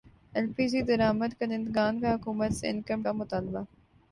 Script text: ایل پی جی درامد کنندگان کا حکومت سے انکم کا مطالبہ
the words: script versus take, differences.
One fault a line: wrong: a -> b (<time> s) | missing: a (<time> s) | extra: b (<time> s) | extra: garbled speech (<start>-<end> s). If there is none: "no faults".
no faults